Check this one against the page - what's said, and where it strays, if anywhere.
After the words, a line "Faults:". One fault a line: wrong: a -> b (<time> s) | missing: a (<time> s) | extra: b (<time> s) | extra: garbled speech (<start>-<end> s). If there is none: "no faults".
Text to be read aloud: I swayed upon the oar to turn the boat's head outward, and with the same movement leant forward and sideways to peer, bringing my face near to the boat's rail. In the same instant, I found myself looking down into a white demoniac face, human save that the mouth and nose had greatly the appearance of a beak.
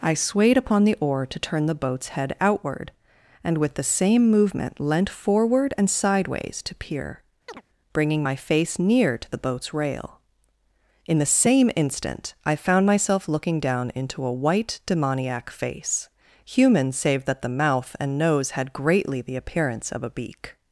I swayed upon the oar to turn the boat's head outward, and with the same movement leant forward and sideways to peer, bringing my face near to the boat's rail. In the same instant, I found myself looking down into a white demoniac face, human save that the mouth and nose had greatly the appearance of a beak.
Faults:
no faults